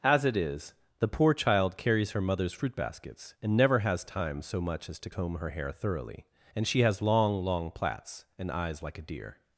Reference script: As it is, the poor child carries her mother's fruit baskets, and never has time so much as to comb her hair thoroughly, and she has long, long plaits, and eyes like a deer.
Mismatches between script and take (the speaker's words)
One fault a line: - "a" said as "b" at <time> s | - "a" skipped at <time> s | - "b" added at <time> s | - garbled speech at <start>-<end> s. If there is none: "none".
none